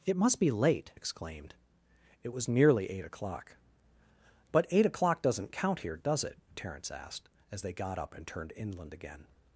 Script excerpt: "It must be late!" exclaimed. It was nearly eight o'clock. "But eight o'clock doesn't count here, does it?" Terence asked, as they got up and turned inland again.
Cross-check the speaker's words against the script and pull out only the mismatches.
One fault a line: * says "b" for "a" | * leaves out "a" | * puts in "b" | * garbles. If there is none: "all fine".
all fine